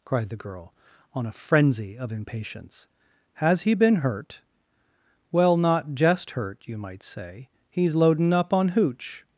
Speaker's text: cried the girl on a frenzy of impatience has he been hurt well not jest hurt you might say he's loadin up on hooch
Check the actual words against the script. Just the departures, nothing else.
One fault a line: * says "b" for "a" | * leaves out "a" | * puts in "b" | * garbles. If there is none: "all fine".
all fine